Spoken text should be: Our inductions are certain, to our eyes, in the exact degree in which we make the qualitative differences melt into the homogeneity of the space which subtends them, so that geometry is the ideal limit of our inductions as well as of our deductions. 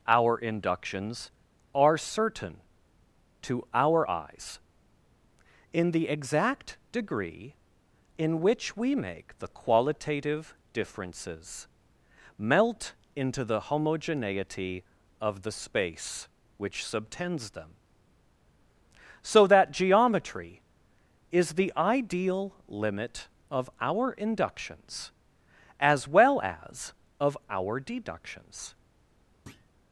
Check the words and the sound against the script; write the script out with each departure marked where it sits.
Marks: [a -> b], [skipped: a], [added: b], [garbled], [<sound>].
Our inductions are certain, to our eyes, in the exact degree in which we make the qualitative differences melt into the homogeneity of the space which subtends them, so that geometry is the ideal limit of our inductions as well as of our deductions. [thud]